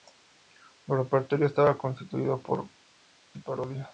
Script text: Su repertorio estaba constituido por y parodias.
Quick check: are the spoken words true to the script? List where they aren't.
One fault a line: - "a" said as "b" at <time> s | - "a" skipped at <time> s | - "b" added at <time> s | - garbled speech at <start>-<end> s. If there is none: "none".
none